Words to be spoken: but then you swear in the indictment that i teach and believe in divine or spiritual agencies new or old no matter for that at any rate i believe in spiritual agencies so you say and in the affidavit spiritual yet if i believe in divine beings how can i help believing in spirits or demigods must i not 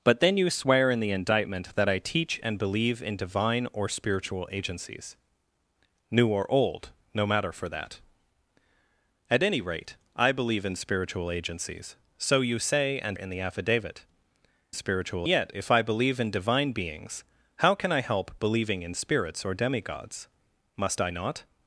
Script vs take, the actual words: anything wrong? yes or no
no